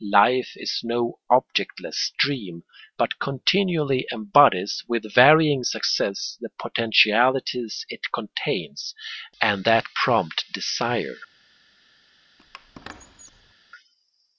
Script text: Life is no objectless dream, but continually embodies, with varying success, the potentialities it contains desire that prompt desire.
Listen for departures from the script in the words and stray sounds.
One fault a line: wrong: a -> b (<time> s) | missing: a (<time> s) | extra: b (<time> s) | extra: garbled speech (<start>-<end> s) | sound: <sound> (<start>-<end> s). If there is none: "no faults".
wrong: desire -> and (9.4 s)
sound: squeak (12.4-13.5 s)